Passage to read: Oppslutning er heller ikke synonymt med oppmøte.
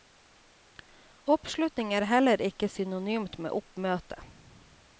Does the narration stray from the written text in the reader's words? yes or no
no